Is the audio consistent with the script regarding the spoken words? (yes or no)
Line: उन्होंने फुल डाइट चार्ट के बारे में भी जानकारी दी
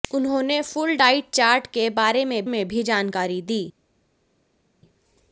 no